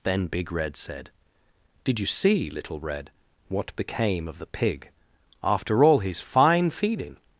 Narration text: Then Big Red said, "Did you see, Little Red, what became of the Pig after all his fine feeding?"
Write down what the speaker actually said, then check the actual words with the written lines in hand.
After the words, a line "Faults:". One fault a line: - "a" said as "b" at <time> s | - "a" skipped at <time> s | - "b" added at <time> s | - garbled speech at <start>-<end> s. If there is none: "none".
Then Big Red said, "Did you see, Little Red, what became of the Pig after all his fine feeding?"
Faults:
none